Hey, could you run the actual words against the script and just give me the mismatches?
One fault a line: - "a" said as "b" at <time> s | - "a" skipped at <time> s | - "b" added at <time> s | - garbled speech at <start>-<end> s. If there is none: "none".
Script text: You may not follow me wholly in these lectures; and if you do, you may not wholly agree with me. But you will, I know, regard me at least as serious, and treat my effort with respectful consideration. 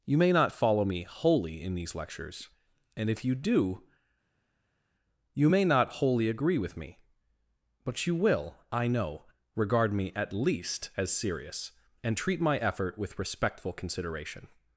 none